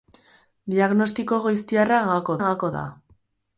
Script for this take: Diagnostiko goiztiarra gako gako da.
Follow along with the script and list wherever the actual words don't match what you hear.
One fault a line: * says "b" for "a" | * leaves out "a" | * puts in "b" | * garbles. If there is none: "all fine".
all fine